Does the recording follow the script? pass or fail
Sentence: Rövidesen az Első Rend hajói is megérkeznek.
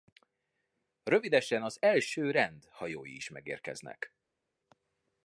pass